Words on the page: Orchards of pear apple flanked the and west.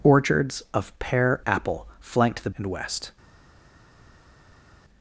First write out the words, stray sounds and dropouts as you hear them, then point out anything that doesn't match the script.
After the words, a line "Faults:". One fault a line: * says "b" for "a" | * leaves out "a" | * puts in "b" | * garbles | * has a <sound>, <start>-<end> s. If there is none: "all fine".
Orchards of pear apple flanked the and west.
Faults:
all fine